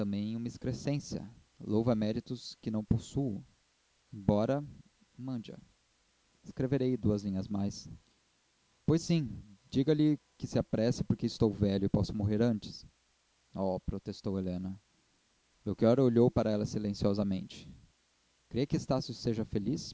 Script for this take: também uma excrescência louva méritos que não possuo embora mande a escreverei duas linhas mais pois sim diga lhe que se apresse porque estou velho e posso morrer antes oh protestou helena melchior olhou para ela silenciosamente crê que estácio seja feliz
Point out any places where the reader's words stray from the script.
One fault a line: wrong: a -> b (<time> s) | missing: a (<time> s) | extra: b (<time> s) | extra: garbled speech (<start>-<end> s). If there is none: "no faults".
no faults